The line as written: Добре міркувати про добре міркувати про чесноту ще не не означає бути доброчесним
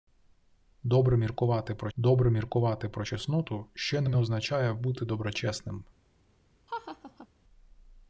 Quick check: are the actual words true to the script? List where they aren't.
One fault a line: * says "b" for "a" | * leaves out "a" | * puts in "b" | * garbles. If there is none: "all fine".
all fine